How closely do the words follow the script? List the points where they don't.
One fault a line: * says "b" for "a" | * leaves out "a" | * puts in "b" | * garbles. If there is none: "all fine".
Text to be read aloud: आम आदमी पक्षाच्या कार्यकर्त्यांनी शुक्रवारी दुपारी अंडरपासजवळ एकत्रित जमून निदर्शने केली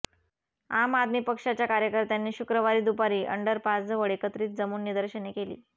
all fine